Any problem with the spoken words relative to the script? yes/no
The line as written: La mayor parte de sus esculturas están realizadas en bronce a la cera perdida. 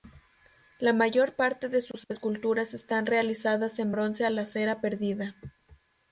no